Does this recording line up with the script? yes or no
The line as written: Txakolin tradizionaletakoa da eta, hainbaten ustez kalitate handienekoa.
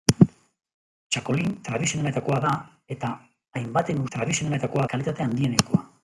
no